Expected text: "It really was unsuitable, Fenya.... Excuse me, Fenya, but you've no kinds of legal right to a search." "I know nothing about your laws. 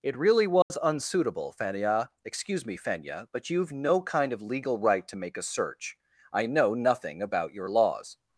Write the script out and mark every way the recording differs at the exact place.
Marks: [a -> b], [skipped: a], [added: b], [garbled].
"It really was unsuitable, Fenya.... Excuse me, Fenya, but you've no [kinds -> kind] of legal right to [added: make] a search." "I know nothing about your laws.